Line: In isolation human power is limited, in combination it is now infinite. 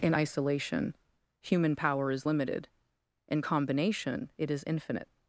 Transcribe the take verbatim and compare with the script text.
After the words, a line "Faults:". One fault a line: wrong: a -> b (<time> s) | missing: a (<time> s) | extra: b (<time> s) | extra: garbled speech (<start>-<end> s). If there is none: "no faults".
In isolation human power is limited, in combination it is infinite.
Faults:
missing: now (4.6 s)